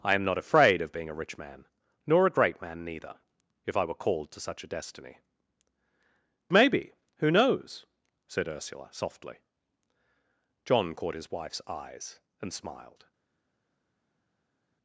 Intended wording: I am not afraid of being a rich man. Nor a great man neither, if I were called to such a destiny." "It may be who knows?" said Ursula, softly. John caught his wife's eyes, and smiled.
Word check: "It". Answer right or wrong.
wrong